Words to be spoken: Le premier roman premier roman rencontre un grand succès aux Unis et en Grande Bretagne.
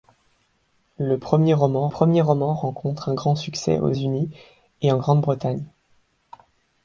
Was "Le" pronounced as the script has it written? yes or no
yes